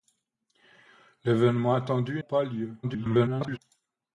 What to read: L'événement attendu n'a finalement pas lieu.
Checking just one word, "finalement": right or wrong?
wrong